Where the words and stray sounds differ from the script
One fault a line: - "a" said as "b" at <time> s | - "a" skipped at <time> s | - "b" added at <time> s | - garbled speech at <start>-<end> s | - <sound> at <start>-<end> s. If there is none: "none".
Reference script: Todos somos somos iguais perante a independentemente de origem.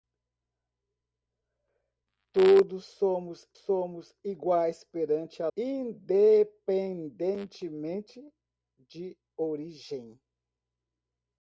none